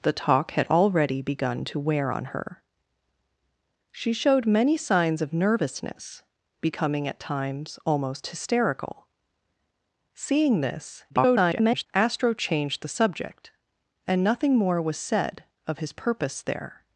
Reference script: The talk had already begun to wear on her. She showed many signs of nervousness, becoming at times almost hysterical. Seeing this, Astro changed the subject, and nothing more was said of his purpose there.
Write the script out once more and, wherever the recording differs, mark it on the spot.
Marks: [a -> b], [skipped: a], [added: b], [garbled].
The talk had already begun to wear on her. She showed many signs of nervousness, becoming at times almost hysterical. Seeing this, [garbled] Astro changed the subject, and nothing more was said of his purpose there.